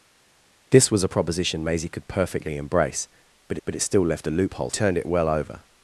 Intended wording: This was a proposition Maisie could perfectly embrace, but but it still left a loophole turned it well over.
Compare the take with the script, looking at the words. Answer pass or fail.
pass